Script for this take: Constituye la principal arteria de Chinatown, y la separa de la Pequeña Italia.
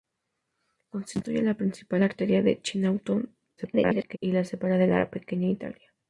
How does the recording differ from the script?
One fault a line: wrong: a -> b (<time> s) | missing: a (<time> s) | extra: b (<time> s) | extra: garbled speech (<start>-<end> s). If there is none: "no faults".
extra: garbled speech (3.6-4.2 s)